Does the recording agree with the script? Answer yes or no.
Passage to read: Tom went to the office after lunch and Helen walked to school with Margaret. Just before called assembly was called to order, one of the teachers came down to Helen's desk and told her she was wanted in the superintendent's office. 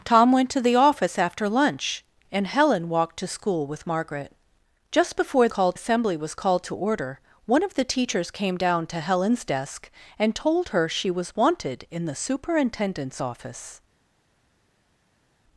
yes